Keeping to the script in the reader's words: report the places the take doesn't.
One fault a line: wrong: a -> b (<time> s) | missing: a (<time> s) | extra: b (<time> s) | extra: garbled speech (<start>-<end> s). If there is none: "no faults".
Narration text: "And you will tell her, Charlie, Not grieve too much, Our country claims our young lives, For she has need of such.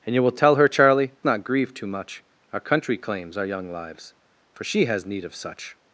no faults